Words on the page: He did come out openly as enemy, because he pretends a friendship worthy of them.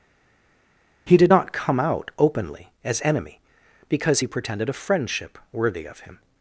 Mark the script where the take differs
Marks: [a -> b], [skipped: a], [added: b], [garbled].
He did [added: not] come out openly as enemy, because he [pretends -> pretended] a friendship worthy of [them. -> him]